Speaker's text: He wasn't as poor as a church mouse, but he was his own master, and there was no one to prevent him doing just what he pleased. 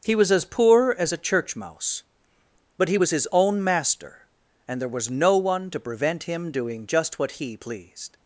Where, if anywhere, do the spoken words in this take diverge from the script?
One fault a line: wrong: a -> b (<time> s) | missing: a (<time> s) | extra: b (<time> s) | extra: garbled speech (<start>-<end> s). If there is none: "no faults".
wrong: wasn't -> was (0.1 s)